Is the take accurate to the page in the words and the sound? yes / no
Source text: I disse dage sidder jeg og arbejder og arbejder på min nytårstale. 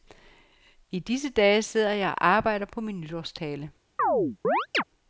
no